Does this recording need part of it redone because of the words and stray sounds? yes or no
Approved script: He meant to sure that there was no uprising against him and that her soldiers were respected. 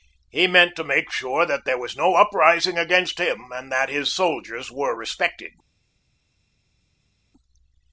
yes